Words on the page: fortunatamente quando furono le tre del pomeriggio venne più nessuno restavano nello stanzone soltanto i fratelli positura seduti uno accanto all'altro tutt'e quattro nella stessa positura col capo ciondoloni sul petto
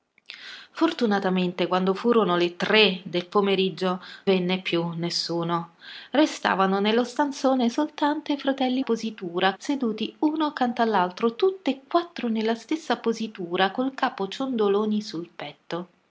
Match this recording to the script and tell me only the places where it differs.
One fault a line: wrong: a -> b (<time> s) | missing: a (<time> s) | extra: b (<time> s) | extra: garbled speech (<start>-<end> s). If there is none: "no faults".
no faults